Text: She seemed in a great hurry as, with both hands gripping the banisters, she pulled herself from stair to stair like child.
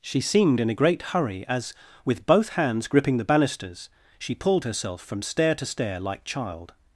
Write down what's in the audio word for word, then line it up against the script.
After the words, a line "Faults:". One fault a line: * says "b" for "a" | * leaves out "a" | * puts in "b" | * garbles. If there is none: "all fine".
She seemed in a great hurry as, with both hands gripping the banisters, she pulled herself from stair to stair like child.
Faults:
all fine